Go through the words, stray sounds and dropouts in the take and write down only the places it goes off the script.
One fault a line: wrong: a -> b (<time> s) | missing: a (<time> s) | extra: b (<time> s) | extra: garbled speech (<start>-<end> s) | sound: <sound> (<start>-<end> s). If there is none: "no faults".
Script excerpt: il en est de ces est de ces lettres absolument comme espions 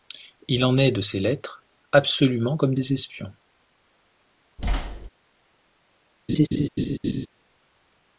missing: est de ces (1.2 s)
extra: des (2.7 s)
sound: thud (4.6-5.1 s)
sound: laugh (6.3-7.3 s)